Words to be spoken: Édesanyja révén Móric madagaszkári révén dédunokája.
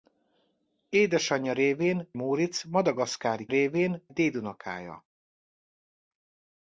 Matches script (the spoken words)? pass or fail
pass